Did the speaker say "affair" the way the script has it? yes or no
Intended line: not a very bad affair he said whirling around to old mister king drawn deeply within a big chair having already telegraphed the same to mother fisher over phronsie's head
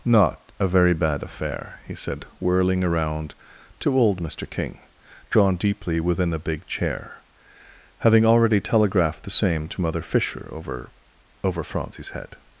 yes